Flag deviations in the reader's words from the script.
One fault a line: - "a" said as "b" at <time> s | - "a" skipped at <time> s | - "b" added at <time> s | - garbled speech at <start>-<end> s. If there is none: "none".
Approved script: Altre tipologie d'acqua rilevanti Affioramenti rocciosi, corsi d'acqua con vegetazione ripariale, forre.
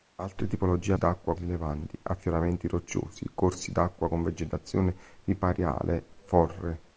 none